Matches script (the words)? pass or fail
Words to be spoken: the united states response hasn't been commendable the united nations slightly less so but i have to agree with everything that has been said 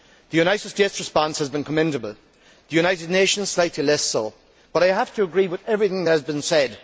fail